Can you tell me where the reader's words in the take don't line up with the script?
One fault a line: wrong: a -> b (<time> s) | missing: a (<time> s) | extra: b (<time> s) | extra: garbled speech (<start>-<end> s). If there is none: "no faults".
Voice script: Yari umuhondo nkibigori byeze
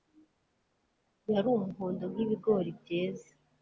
no faults